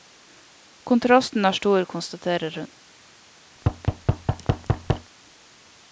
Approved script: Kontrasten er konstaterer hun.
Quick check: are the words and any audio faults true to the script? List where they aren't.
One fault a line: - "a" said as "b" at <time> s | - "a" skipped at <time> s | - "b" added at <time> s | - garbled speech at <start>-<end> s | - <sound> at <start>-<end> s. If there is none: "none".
- "stor" added at 1.5 s
- thud at 3.6-5.1 s